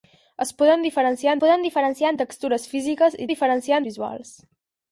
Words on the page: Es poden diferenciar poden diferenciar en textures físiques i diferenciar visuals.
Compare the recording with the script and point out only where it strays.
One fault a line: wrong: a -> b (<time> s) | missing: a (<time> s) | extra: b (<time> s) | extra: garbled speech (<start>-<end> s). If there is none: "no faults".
no faults